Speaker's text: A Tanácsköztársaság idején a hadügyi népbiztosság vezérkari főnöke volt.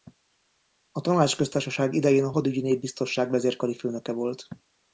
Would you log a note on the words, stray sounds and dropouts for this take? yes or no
no